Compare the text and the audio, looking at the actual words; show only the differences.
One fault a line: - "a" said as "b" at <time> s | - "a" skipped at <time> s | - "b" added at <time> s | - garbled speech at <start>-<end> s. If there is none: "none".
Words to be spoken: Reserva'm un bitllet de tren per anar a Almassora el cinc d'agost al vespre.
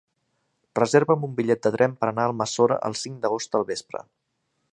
none